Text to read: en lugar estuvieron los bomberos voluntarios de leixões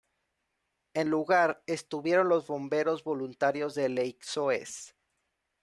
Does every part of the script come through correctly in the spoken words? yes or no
yes